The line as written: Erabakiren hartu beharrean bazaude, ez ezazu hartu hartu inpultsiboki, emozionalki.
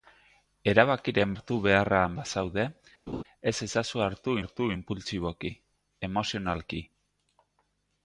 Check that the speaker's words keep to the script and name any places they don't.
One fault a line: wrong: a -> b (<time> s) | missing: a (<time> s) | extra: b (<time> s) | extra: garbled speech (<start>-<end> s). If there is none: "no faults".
no faults